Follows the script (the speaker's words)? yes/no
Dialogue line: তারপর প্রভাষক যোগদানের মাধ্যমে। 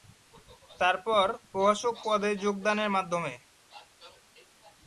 no